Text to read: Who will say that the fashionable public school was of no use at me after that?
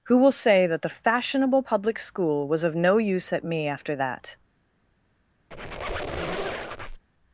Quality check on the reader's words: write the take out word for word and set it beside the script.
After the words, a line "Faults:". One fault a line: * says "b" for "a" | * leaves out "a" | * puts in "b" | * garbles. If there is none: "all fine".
Who will say that the fashionable public school was of no use at me after that?
Faults:
all fine